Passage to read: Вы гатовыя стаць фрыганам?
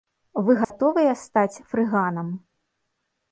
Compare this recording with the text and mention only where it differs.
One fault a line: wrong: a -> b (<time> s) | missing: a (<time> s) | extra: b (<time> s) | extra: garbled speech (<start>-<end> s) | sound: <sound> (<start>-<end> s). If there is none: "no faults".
sound: dropout (0.6-0.7 s)